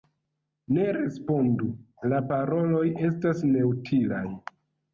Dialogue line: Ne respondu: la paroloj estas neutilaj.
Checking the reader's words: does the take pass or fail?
pass